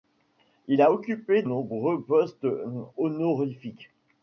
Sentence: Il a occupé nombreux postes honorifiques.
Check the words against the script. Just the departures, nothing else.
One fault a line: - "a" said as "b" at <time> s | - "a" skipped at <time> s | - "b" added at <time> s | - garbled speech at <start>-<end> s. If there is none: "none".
none